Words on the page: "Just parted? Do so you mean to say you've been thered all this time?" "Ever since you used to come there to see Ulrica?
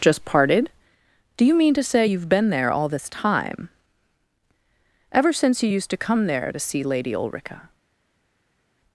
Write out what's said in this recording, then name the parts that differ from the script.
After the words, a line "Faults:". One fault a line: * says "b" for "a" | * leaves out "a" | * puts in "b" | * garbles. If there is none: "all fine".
"Just parted? Do you mean to say you've been there all this time?" "Ever since you used to come there to see Lady Ulrica?
Faults:
* leaves out "so"
* says "there" for "thered"
* puts in "Lady"